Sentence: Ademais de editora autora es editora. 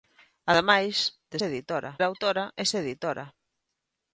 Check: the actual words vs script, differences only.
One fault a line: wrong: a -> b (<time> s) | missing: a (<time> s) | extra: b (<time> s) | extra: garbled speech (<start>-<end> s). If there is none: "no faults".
no faults